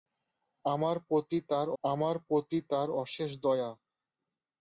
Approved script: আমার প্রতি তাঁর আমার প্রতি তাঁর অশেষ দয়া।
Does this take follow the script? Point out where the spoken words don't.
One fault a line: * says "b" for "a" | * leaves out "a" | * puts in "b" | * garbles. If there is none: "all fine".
all fine